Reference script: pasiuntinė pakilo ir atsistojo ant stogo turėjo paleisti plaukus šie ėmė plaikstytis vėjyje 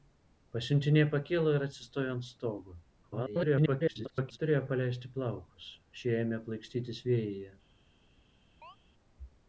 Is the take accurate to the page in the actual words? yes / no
no